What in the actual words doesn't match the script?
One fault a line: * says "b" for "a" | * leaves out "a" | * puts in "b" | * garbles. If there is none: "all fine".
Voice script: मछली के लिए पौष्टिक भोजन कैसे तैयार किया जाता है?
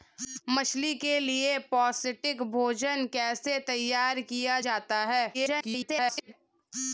* garbles